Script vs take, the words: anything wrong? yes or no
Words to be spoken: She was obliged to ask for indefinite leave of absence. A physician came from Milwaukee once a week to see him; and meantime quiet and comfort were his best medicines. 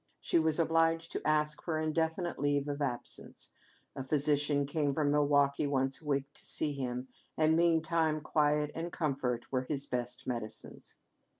no